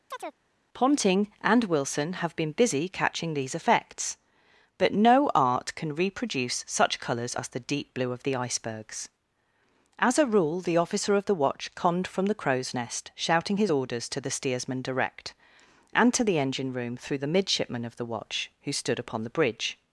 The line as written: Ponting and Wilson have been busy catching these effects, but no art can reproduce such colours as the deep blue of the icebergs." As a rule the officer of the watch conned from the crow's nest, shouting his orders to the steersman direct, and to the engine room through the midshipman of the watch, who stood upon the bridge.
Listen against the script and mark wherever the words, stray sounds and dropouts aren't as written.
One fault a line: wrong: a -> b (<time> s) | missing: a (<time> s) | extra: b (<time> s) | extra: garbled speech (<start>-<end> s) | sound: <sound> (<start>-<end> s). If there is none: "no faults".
sound: chirp (0.1-0.4 s)